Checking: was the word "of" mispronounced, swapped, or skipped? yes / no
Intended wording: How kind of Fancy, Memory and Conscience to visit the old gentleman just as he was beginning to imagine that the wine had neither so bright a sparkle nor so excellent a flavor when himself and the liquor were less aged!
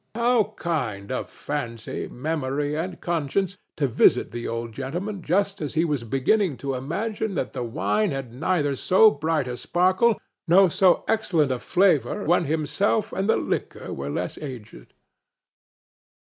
no